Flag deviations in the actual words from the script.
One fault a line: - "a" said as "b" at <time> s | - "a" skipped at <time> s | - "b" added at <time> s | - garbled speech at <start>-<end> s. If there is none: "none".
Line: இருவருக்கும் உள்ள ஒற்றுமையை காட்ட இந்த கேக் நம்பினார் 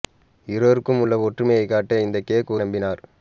none